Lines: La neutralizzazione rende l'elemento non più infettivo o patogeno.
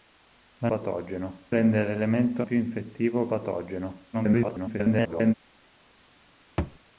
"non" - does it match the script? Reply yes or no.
no